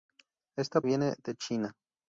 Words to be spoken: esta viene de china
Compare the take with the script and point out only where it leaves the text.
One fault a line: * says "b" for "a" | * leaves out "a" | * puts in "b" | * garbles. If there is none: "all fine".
all fine